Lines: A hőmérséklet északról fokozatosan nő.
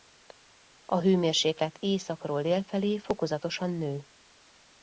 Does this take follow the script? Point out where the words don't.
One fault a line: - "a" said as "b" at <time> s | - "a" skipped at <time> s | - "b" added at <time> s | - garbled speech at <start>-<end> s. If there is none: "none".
- "dél felé" added at 2.4 s